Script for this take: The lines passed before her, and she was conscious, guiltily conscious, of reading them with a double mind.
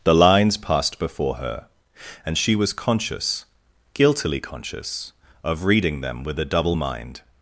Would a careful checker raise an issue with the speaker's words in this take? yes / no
no